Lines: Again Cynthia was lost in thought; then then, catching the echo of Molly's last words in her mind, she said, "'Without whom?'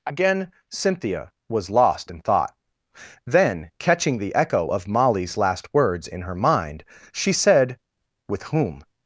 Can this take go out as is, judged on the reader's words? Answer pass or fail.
fail